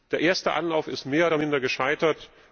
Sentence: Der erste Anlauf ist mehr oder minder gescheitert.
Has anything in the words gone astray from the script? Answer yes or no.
no